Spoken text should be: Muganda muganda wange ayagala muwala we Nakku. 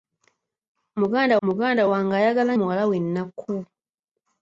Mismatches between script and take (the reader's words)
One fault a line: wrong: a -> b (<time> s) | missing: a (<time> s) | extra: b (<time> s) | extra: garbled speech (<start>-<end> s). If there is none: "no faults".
no faults